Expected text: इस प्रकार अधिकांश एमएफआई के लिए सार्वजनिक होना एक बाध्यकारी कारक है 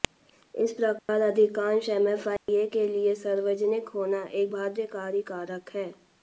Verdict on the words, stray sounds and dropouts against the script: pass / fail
fail